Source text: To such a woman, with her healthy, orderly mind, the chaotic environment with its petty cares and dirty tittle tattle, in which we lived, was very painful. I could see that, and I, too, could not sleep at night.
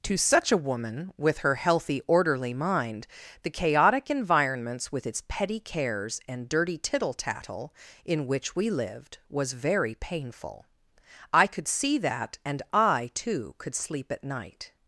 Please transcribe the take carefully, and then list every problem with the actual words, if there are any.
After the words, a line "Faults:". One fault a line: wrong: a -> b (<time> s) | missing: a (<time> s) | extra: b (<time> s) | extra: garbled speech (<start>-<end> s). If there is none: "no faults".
To such a woman, with her healthy, orderly mind, the chaotic environments with its petty cares and dirty tittle tattle, in which we lived, was very painful. I could see that, and I, too, could sleep at night.
Faults:
wrong: environment -> environments (4.1 s)
missing: not (13.7 s)